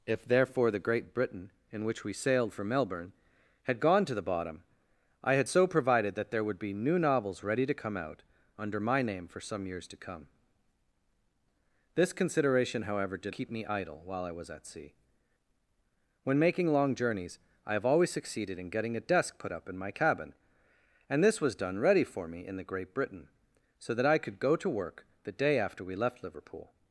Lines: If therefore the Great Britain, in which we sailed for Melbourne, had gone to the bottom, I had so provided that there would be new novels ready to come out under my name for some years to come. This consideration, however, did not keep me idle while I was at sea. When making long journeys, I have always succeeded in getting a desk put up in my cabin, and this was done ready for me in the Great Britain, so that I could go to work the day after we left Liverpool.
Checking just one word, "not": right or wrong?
wrong